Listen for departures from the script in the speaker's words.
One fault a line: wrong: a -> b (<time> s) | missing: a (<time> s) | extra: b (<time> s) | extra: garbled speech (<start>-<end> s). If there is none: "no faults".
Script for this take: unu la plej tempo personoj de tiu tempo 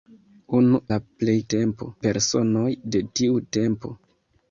no faults